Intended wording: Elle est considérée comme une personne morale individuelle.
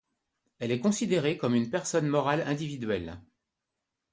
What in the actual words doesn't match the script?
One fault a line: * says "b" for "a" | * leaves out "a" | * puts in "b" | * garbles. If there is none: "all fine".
all fine